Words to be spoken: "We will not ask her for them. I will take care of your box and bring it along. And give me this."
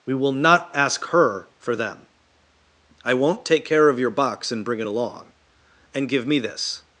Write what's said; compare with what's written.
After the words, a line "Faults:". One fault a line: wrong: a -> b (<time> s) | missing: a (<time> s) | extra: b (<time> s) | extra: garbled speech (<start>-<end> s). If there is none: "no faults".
"We will not ask her for them. I won't take care of your box and bring it along. And give me this."
Faults:
wrong: will -> won't (3.1 s)